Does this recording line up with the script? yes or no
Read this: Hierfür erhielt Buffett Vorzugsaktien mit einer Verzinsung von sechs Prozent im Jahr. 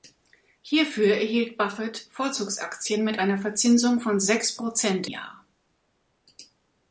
no